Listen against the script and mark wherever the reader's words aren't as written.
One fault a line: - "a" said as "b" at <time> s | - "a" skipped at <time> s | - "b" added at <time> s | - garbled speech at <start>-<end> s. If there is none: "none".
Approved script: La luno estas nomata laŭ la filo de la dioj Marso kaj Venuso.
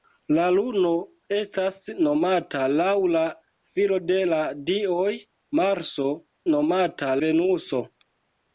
- "kaj" said as "nomata" at 6.5 s